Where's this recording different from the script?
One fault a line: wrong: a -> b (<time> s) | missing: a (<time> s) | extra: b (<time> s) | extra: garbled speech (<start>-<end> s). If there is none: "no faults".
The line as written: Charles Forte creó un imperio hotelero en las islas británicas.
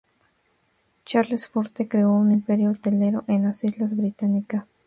no faults